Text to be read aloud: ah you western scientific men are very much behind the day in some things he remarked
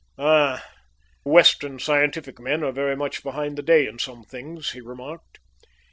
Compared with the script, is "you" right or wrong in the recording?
wrong